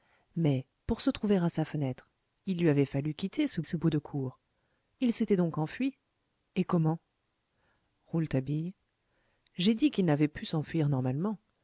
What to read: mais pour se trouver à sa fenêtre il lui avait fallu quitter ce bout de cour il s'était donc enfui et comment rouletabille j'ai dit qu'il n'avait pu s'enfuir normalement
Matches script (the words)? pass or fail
fail